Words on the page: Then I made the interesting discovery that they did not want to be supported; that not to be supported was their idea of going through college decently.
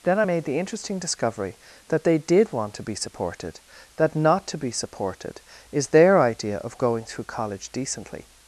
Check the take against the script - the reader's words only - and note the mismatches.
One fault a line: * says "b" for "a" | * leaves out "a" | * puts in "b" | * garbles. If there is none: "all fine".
* leaves out "not"
* says "is" for "was"